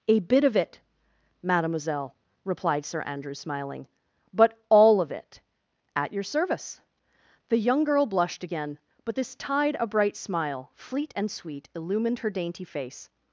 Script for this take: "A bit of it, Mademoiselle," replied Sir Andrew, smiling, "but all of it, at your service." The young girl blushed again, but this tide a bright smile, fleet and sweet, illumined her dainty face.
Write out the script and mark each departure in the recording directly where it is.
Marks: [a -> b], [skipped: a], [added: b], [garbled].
"A bit of it, Mademoiselle," replied Sir Andrew, smiling, "but all of it, at your service." The young girl blushed again, but this tide a bright smile, fleet and sweet, illumined her dainty face.